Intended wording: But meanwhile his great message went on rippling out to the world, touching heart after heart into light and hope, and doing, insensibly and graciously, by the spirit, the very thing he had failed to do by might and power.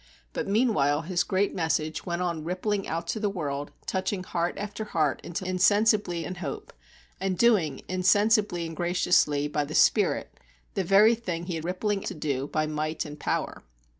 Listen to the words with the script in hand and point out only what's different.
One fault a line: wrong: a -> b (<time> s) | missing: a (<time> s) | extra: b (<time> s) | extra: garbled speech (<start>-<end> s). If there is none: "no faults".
wrong: light -> insensibly (5.4 s)
wrong: failed -> rippling (11.6 s)